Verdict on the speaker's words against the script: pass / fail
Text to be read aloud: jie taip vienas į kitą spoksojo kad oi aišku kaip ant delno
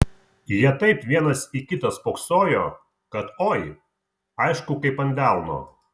pass